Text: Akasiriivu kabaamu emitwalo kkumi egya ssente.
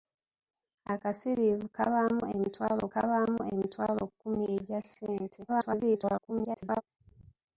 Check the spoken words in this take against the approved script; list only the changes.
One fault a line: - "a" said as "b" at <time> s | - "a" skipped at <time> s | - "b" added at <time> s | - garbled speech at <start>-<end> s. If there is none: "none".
- "kabaamu emitwalo" added at 2.9 s
- garbled speech at 5.5-6.8 s